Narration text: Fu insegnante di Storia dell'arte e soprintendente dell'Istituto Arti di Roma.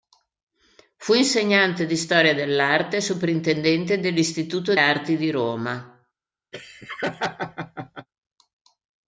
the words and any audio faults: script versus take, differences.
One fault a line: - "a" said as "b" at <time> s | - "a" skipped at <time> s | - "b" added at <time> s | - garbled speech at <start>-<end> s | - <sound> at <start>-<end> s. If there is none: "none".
- laugh at 6.5-8.1 s